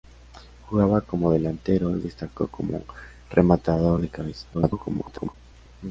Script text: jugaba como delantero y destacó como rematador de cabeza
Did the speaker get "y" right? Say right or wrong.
right